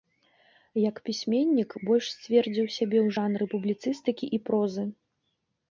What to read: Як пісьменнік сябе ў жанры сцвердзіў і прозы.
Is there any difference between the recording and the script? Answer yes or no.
yes